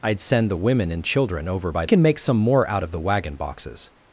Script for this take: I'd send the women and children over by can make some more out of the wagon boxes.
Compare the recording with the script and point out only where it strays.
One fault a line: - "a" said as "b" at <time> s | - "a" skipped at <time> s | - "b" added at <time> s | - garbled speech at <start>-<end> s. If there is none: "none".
none